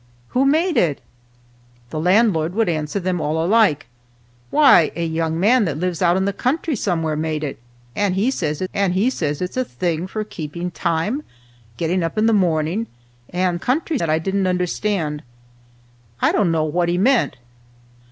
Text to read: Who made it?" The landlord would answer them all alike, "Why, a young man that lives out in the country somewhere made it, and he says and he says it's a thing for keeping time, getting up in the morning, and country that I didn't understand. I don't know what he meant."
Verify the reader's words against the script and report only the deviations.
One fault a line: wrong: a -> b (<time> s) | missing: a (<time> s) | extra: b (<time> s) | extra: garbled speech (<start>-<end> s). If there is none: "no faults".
no faults